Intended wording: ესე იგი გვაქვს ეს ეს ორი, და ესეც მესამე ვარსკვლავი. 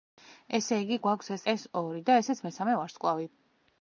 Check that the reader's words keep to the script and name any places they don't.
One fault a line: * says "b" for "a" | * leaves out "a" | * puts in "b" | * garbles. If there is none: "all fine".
all fine